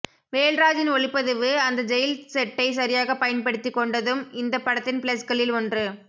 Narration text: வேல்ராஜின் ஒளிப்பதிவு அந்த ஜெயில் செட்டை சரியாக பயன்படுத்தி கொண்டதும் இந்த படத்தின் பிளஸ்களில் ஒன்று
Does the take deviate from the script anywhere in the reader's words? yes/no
no